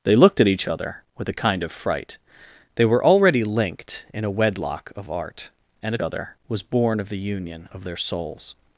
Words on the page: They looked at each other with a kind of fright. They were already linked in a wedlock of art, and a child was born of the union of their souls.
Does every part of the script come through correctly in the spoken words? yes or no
no